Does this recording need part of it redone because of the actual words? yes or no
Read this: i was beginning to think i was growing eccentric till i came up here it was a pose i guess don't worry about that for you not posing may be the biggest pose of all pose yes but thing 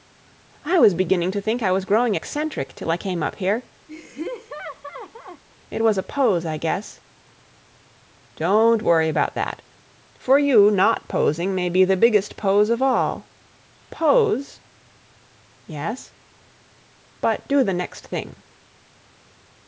yes